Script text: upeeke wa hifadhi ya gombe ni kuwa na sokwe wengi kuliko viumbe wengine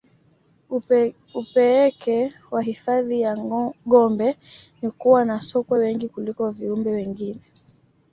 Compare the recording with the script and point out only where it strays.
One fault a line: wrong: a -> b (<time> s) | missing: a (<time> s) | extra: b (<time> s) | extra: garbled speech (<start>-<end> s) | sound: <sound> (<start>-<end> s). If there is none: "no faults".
no faults